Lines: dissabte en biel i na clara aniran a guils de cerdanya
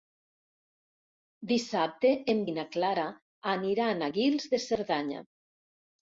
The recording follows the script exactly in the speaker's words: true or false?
false